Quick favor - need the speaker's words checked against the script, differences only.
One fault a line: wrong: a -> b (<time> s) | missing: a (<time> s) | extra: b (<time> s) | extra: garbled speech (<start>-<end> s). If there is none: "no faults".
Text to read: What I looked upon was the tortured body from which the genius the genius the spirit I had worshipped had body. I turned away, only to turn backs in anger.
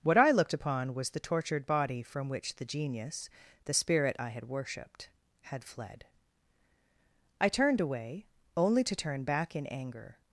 missing: genius the (3.7 s)
wrong: body -> fled (5.6 s)
wrong: backs -> back (9.2 s)